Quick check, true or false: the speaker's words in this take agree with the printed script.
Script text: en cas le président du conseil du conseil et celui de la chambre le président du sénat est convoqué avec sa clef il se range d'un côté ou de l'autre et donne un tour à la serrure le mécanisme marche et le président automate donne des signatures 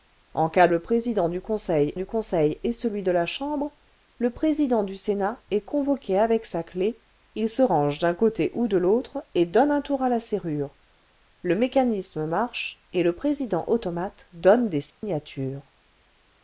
true